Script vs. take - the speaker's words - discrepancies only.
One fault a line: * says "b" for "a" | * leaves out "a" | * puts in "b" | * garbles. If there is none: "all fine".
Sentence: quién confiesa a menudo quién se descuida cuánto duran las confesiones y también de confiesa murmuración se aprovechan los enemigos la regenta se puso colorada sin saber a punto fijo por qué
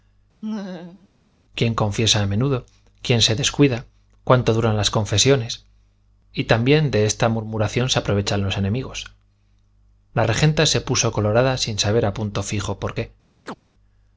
* says "esta" for "confiesa"